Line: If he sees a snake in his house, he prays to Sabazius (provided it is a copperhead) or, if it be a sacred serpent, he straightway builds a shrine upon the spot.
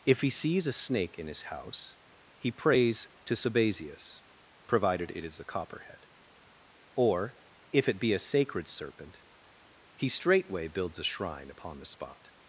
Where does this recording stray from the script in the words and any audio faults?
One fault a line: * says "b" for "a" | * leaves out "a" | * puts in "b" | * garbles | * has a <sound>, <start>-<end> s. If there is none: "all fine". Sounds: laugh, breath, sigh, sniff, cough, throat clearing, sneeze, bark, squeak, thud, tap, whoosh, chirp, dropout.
all fine